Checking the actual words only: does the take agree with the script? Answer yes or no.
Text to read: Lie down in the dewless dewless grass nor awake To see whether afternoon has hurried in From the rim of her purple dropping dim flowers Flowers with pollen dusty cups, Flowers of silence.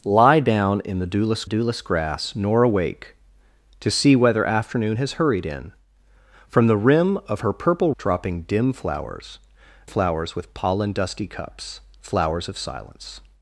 yes